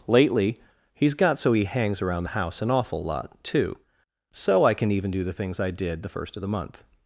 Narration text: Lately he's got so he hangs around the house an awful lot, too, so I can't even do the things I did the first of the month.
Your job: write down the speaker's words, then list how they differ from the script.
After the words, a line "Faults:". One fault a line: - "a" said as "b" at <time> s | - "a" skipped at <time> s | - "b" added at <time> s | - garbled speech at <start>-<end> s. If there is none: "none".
Lately he's got so he hangs around the house an awful lot, too, so I can even do the things I did the first of the month.
Faults:
- "can't" said as "can" at 4.7 s